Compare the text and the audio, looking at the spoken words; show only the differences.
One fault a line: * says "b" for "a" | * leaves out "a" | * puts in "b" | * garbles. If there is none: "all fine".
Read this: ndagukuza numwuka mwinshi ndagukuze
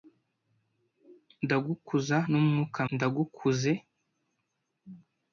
* leaves out "mwinshi"